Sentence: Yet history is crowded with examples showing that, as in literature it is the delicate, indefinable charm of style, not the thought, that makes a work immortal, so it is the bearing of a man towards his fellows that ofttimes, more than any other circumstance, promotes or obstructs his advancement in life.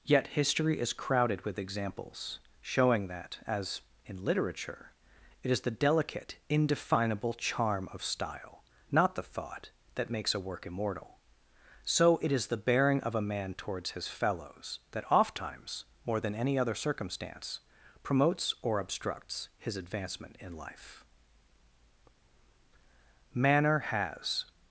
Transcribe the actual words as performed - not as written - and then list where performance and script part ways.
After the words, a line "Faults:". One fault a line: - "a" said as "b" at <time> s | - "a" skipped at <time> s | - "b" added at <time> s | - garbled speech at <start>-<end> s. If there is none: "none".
Yet history is crowded with examples showing that, as in literature it is the delicate, indefinable charm of style, not the thought, that makes a work immortal, so it is the bearing of a man towards his fellows that ofttimes, more than any other circumstance, promotes or obstructs his advancement in life. Manner has
Faults:
- "Manner has" added at 23.3 s